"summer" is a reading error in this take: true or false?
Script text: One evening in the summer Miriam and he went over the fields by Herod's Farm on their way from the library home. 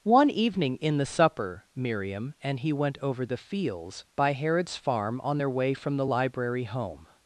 true